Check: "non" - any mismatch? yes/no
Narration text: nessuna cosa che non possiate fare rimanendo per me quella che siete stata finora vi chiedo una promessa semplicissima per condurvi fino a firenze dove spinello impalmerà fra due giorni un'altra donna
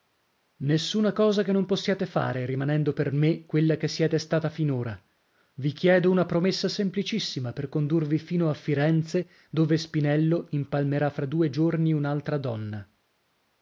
no